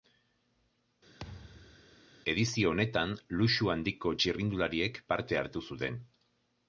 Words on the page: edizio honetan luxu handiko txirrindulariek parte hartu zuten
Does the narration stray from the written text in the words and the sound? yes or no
yes